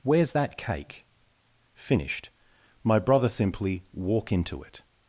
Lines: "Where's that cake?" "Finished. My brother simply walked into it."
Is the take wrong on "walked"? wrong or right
wrong